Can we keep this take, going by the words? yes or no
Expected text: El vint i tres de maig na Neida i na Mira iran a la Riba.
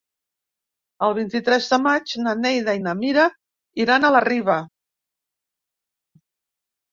yes